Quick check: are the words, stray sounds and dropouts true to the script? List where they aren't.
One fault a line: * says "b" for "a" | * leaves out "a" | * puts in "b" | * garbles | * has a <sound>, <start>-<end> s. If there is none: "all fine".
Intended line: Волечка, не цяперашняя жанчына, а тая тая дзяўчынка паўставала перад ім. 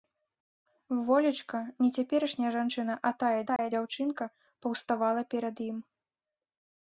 * has a dropout, 3.6-3.6 s